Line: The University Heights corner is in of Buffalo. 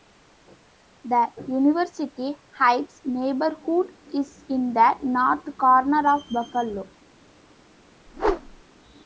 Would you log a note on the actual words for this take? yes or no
yes